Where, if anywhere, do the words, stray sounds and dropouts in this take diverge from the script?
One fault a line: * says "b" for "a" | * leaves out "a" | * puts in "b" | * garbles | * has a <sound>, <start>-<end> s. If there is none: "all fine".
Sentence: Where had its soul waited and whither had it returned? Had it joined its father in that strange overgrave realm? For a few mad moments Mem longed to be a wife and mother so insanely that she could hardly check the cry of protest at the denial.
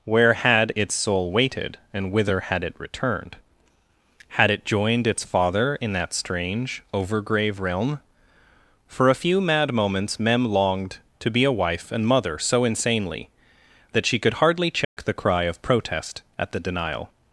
* has a dropout, 14.8-15.0 s